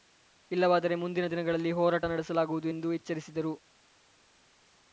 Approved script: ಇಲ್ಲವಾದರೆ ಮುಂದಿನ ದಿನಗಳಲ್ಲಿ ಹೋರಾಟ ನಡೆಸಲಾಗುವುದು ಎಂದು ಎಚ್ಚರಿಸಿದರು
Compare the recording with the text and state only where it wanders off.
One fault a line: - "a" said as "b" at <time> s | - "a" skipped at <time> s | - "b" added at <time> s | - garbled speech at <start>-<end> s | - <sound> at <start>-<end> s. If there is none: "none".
none